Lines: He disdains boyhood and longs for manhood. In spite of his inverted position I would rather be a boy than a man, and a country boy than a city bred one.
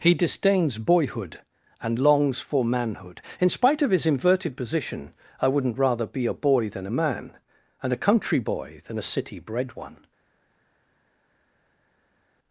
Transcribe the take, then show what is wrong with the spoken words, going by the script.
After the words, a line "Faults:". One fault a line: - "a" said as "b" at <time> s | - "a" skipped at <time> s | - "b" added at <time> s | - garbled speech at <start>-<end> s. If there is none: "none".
He disdains boyhood and longs for manhood. In spite of his inverted position I wouldn't rather be a boy than a man, and a country boy than a city bred one.
Faults:
- "would" said as "wouldn't" at 5.5 s